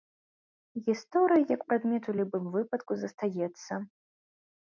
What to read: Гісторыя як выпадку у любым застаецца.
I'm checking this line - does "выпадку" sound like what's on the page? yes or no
no